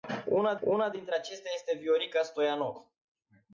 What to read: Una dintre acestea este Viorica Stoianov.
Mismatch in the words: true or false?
true